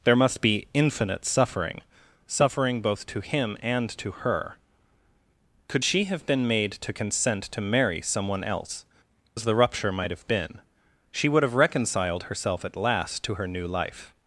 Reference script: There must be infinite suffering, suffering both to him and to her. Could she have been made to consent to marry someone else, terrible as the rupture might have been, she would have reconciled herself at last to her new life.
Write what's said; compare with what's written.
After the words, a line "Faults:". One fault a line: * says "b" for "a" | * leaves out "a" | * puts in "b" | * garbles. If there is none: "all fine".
There must be infinite suffering, suffering both to him and to her. Could she have been made to consent to marry someone else, as the rupture might have been, she would have reconciled herself at last to her new life.
Faults:
* leaves out "terrible"